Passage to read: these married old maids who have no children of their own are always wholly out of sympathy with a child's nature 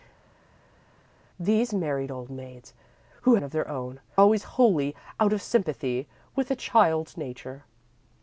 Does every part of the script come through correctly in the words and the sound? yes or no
no